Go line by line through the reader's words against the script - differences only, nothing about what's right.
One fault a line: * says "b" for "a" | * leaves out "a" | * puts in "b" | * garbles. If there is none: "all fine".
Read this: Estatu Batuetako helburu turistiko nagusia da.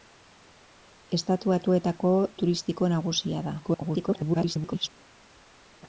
* leaves out "helburu"
* garbles